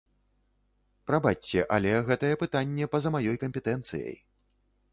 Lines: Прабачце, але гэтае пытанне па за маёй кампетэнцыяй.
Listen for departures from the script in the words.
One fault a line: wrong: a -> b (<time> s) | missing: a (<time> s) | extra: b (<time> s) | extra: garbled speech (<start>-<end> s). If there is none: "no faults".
no faults